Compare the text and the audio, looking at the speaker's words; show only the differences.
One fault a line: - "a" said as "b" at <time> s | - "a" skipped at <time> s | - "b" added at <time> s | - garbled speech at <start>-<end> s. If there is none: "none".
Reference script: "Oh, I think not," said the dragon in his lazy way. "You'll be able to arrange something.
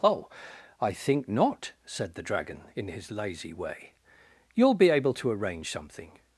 none